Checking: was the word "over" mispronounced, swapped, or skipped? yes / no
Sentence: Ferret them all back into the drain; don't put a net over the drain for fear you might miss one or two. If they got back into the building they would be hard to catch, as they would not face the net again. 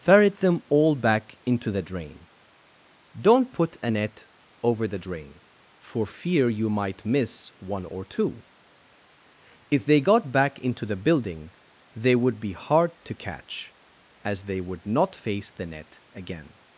no